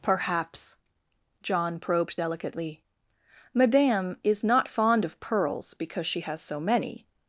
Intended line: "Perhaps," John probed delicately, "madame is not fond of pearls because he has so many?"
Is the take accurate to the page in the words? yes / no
no